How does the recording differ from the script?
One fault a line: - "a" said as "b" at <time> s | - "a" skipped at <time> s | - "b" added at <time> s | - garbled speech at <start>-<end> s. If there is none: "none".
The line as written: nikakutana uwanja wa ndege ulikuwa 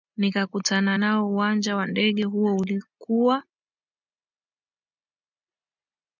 - "nao" added at 0.9 s
- "huo" added at 2.2 s